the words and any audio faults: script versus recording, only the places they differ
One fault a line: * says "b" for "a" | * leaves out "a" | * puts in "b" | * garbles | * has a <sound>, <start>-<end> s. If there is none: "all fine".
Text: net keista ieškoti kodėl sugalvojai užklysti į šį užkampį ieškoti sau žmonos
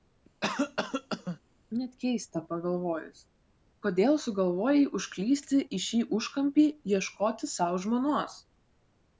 * has a cough, 0.4-1.4 s
* says "pagalvojus" for "ieškoti"